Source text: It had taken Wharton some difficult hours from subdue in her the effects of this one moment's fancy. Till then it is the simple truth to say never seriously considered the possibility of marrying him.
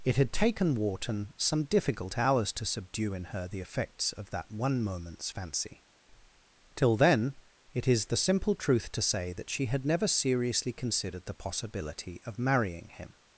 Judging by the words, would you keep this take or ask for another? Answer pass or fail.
fail